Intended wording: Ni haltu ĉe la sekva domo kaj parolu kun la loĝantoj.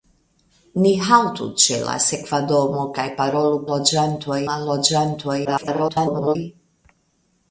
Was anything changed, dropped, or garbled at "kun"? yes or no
yes